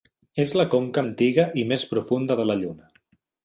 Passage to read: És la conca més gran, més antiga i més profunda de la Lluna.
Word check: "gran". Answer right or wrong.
wrong